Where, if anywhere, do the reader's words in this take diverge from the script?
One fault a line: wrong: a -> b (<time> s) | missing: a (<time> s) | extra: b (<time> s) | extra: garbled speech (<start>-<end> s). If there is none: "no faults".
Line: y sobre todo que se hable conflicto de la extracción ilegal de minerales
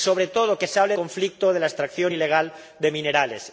no faults